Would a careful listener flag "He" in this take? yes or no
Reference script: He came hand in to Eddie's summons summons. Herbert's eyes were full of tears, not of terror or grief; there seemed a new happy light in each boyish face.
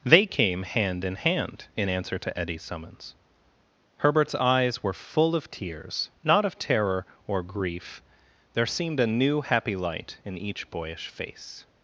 yes